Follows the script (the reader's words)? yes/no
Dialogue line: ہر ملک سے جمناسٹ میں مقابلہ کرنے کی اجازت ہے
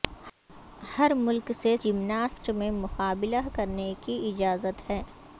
yes